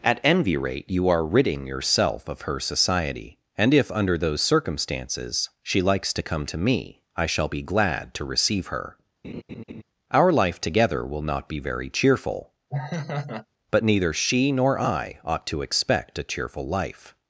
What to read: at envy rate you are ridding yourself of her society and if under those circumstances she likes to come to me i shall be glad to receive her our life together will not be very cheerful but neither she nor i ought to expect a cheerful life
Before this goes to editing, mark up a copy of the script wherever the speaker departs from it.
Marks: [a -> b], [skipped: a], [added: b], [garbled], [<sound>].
at envy rate you are ridding yourself of her society and if under those circumstances she likes to come to me i shall be glad to receive her [laugh] our life together will not be very cheerful [laugh] but neither she nor i ought to expect a cheerful life